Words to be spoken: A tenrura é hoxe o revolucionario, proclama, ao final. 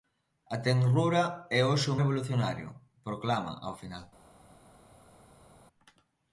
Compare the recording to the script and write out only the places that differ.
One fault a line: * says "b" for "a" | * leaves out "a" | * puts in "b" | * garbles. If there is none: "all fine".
all fine